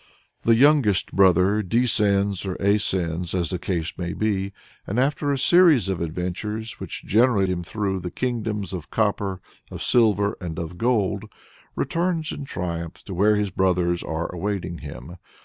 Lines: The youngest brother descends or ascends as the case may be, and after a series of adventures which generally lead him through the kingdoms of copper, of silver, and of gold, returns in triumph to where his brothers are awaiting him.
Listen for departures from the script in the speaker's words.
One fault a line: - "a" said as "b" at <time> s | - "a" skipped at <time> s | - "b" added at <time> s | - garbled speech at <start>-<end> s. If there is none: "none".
- "lead" skipped at 7.5 s